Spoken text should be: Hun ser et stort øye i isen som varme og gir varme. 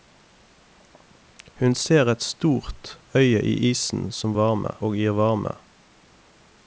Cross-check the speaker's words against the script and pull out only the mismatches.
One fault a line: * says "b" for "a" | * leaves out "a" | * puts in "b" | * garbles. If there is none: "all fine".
all fine